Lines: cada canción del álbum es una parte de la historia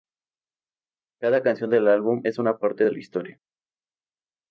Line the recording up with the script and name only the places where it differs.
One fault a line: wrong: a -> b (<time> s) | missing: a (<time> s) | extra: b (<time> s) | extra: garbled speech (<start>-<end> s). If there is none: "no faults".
no faults